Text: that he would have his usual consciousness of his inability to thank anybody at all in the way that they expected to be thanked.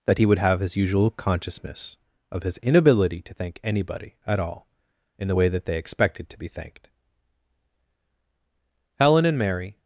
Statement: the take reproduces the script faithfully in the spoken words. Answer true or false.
false